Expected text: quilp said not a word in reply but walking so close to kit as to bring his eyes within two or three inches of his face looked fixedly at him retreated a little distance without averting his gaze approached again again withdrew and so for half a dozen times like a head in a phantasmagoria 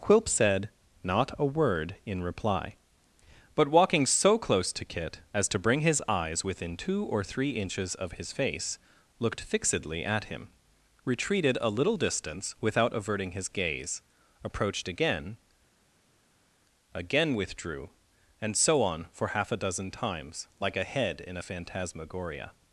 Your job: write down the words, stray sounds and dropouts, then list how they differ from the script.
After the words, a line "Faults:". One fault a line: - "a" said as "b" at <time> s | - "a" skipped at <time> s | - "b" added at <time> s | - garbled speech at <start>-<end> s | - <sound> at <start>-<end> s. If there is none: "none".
quilp said not a word in reply but walking so close to kit as to bring his eyes within two or three inches of his face looked fixedly at him retreated a little distance without averting his gaze approached again again withdrew and so on for half a dozen times like a head in a phantasmagoria
Faults:
- "on" added at 18.8 s